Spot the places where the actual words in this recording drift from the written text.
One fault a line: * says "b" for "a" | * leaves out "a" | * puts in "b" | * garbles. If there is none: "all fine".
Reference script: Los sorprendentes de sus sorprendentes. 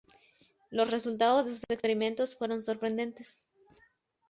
* says "resultados" for "sorprendentes"
* puts in "experimentos fueron"